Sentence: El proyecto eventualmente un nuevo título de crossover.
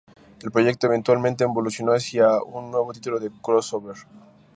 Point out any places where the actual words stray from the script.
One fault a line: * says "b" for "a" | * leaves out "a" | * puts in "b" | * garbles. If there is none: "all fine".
* puts in "evolucionó hacia"